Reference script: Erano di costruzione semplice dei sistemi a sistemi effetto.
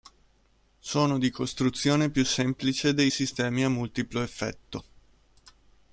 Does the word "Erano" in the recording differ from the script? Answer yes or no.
yes